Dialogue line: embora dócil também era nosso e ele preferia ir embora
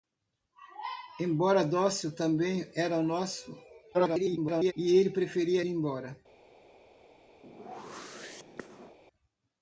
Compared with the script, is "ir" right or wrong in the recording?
wrong